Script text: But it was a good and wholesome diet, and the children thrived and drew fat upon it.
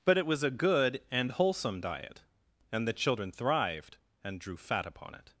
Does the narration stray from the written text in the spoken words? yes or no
no